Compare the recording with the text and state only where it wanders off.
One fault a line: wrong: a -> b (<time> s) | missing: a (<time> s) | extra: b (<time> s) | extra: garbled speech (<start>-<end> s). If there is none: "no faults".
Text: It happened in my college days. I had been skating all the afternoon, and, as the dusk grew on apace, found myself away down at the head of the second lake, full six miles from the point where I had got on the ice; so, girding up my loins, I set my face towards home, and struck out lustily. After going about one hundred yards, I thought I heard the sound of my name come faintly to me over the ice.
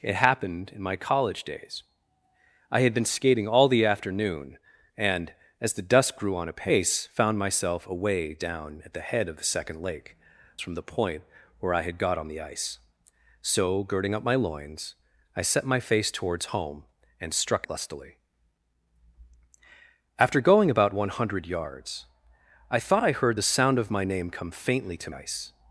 missing: full six miles (10.2 s)
missing: out (17.7 s)
missing: me over the (25.1 s)